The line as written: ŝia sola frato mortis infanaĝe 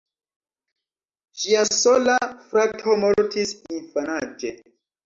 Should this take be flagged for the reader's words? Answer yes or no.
no